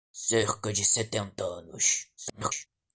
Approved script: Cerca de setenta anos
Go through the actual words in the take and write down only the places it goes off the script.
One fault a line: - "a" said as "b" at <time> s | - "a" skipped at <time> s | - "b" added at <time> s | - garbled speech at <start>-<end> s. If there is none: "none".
- garbled speech at 2.2-2.7 s